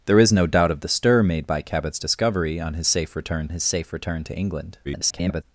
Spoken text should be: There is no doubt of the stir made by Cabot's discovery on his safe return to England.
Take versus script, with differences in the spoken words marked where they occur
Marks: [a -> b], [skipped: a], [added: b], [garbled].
There is no doubt of the stir made by Cabot's discovery on his safe return [added: his safe return] to England. [garbled]